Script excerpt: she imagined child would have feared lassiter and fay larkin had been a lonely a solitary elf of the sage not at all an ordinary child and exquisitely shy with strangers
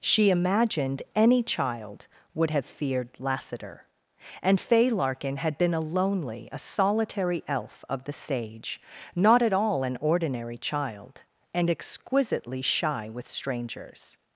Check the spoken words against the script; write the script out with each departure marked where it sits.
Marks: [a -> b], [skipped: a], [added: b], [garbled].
she imagined [added: any] child would have feared lassiter and fay larkin had been a lonely a solitary elf of the sage not at all an ordinary child and exquisitely shy with strangers